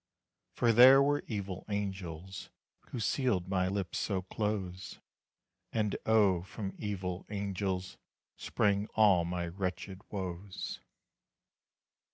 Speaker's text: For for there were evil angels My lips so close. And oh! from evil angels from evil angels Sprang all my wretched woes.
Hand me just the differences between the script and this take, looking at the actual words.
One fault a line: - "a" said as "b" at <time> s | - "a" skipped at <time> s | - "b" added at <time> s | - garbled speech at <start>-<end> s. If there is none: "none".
- "for" skipped at 0.7 s
- "Who sealed" added at 2.9 s
- "from evil angels" skipped at 8.0 s